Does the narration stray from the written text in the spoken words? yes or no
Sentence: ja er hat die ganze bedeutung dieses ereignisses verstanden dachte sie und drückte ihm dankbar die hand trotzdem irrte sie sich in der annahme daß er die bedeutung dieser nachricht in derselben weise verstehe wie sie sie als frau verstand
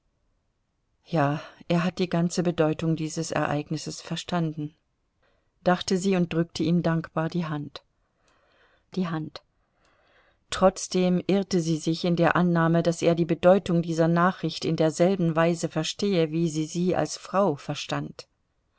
yes